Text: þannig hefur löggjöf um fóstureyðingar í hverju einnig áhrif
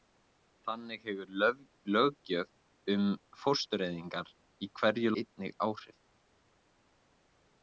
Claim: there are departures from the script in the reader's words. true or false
false